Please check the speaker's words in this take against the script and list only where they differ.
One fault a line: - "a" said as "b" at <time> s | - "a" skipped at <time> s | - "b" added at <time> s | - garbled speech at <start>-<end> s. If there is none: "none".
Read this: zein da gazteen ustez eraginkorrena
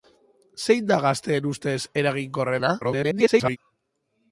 - garbled speech at 2.8-3.6 s